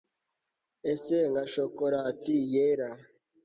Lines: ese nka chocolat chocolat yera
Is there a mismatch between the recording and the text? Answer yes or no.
yes